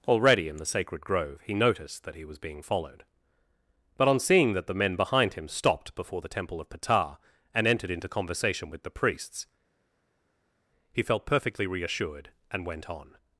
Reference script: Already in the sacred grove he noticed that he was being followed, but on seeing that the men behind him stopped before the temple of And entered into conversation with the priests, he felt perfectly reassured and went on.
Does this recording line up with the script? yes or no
no